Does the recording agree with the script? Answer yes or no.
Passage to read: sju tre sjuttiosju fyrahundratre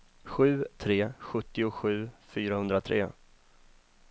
yes